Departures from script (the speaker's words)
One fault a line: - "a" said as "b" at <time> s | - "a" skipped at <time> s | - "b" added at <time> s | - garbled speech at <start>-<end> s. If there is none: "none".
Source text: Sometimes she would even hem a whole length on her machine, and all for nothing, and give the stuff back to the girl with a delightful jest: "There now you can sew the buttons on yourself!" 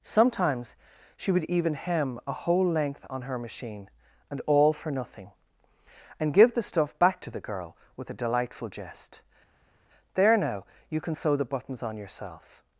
none